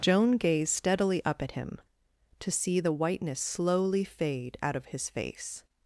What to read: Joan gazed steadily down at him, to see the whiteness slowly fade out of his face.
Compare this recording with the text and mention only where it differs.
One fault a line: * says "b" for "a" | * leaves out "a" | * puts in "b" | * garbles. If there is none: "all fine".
* says "up" for "down"